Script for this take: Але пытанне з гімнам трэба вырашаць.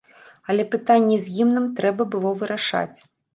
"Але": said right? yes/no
yes